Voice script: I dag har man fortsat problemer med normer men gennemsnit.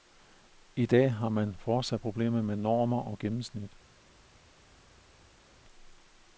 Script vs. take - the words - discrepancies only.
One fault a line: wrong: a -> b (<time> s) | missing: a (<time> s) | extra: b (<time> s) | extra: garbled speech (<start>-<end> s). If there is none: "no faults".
wrong: men -> og (3.0 s)